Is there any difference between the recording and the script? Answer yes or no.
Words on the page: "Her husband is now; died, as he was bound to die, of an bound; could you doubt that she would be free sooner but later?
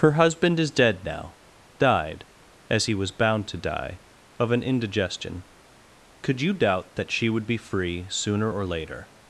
yes